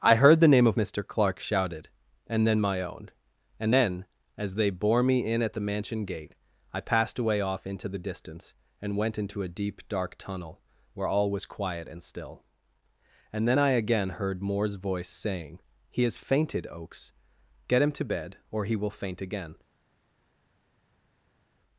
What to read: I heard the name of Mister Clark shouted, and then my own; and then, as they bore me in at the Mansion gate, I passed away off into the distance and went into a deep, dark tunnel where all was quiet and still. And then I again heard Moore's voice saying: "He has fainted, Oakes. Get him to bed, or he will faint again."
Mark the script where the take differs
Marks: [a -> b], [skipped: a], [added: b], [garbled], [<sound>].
I heard the name of Mister Clark shouted, and then my own; and then, as they bore me in at the Mansion gate, I passed away off into the distance and went into a deep, dark tunnel where all was quiet and still. And then I again heard Moore's voice saying: "He has fainted, Oakes. Get him to bed, or he will faint again."